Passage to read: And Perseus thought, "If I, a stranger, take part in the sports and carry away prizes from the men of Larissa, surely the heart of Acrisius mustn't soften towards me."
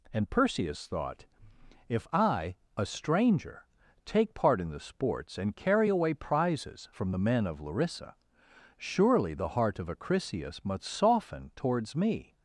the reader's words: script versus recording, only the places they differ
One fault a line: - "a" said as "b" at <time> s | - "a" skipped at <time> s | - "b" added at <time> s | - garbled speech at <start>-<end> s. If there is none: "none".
- "mustn't" said as "must" at 10.6 s